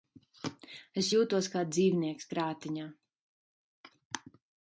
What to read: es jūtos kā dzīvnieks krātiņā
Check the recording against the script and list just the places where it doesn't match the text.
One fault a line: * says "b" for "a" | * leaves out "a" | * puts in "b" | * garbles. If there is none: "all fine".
all fine